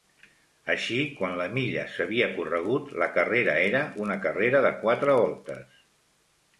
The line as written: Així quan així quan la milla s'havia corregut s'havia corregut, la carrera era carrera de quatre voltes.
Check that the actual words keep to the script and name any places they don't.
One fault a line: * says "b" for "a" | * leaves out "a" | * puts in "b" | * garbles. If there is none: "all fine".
* leaves out "així quan"
* leaves out "s'havia corregut"
* puts in "una"